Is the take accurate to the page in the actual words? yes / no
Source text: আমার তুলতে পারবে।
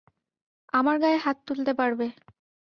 no